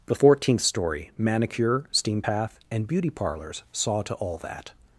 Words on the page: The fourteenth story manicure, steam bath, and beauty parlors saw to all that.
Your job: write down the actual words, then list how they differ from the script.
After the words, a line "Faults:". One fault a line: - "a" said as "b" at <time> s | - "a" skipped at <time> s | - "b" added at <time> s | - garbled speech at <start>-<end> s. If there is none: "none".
The fourteenth story manicure, steam path, and beauty parlors saw to all that.
Faults:
- "bath" said as "path" at 2.2 s